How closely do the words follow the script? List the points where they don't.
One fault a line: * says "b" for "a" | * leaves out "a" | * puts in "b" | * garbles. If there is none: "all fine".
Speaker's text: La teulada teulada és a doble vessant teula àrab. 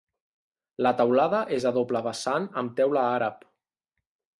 * leaves out "teulada"
* puts in "amb"